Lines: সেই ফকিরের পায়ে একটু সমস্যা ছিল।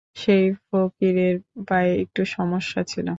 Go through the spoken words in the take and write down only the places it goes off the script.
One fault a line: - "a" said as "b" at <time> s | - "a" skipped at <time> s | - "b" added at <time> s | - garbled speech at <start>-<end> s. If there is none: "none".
none